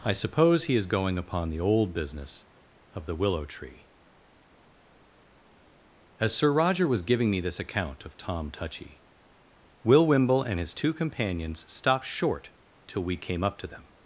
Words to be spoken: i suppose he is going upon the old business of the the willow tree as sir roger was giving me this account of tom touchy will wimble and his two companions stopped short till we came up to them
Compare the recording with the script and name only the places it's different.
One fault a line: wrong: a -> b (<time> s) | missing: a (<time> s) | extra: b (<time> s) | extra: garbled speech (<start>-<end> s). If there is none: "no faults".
missing: the (3.1 s)